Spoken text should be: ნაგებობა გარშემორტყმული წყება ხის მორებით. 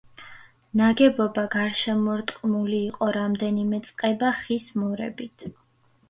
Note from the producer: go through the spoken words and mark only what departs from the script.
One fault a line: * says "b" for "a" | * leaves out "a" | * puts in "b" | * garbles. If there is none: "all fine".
* puts in "იყო რამდენიმე"